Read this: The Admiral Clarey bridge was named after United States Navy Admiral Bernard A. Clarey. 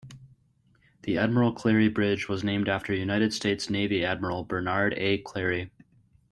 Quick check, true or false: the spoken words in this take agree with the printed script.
true